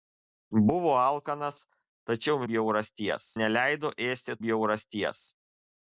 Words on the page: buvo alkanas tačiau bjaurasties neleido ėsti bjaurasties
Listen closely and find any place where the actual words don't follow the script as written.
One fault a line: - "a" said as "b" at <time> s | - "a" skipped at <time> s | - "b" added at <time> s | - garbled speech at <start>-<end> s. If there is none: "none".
none